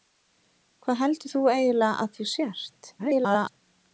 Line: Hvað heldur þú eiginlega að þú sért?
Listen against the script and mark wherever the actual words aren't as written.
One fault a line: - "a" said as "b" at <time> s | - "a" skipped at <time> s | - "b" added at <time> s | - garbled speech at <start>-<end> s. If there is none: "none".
- garbled speech at 3.0-3.6 s